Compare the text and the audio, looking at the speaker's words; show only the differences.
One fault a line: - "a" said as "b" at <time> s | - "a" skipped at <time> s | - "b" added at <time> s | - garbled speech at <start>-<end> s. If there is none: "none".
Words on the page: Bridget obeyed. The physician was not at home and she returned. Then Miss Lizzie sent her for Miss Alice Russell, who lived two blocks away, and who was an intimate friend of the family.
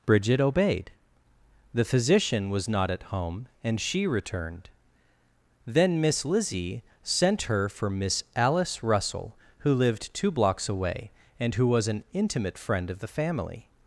none